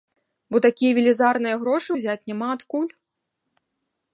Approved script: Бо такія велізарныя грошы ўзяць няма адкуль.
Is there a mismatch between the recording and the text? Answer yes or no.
no